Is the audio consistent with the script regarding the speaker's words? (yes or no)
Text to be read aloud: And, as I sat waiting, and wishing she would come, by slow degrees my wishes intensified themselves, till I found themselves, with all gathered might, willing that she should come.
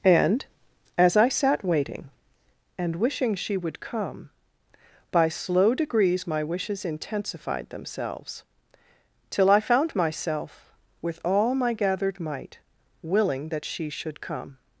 no